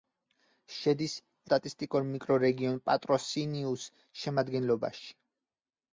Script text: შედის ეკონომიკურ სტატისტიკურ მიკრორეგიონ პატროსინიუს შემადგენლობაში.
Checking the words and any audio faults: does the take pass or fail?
fail